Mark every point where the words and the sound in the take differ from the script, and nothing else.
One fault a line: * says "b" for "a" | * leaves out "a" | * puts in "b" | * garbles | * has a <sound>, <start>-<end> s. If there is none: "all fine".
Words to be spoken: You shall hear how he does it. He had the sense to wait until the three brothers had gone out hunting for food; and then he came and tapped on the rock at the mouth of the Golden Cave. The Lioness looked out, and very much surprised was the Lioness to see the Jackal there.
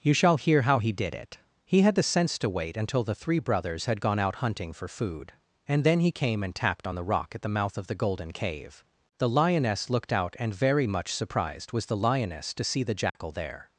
* says "did" for "does"
* has a dropout, 13.1-13.2 s